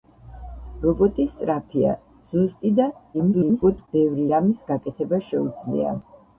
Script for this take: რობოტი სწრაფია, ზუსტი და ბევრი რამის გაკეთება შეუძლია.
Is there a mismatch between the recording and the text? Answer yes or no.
yes